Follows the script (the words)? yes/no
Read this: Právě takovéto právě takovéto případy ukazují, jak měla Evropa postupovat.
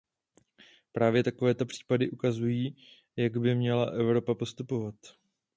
no